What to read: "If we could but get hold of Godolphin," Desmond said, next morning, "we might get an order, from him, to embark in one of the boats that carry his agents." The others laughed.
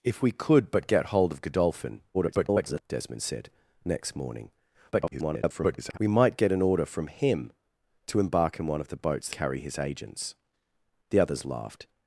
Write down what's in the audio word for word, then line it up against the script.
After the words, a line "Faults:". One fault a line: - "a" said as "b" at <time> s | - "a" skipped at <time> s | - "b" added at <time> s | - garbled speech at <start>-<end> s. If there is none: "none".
"If we could but get hold of Godolphin," [garbled] Desmond said, next morning, [garbled] "we might get an order, from him, to embark in one of the boats carry his agents." The others laughed.
Faults:
- garbled speech at 2.1-2.8 s
- garbled speech at 4.9-6.0 s
- "that" skipped at 9.3 s